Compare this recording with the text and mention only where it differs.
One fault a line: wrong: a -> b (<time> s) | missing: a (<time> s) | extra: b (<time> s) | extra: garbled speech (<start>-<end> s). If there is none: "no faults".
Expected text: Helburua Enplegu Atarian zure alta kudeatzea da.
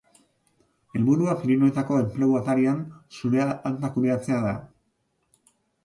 extra: Pirinioetako (1.4 s)